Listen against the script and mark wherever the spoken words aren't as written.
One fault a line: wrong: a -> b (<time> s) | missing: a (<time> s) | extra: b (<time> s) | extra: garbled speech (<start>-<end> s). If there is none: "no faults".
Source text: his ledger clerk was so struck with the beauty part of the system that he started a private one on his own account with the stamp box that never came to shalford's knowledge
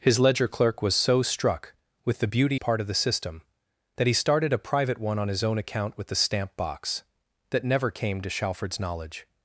no faults